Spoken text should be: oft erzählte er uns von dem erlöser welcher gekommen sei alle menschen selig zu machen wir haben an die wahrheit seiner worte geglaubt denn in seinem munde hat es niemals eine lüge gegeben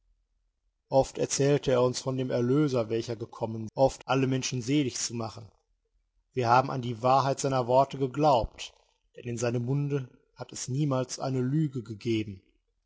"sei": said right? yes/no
no